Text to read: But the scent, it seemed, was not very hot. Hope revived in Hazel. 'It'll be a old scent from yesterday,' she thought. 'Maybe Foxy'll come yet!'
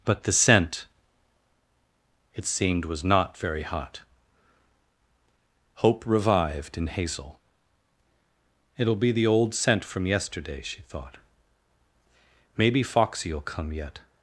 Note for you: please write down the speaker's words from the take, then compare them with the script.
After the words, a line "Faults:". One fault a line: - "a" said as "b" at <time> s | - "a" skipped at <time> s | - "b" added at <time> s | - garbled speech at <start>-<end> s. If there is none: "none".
But the scent, it seemed, was not very hot. Hope revived in Hazel. 'It'll be the old scent from yesterday,' she thought. 'Maybe Foxy'll come yet!'
Faults:
- "a" said as "the" at 9.1 s